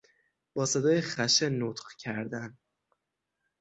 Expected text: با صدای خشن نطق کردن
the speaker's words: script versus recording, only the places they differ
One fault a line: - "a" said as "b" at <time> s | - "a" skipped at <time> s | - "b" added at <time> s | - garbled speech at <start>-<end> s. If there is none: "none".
none